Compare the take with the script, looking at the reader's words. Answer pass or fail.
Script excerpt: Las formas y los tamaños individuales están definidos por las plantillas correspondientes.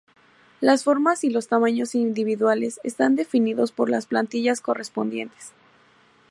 pass